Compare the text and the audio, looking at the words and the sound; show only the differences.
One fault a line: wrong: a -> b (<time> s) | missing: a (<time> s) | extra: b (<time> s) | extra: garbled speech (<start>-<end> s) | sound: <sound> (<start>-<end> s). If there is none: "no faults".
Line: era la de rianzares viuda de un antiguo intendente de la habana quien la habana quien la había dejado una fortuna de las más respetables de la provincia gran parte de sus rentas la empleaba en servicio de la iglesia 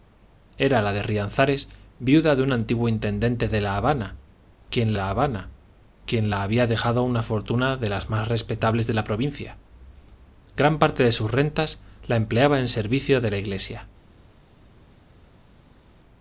no faults